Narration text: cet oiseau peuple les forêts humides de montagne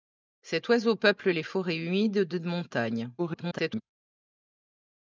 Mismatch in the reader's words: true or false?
true